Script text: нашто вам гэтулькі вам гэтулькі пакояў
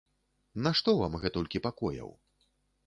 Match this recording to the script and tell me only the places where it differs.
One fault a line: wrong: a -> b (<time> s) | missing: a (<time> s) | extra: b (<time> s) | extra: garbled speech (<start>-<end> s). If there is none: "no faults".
missing: вам гэтулькі (1.6 s)